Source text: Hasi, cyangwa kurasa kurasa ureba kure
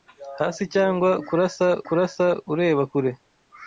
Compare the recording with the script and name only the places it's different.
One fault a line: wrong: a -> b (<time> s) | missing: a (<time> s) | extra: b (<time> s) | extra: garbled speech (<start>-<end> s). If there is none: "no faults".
no faults